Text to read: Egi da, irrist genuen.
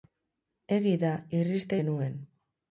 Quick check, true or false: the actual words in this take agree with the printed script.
true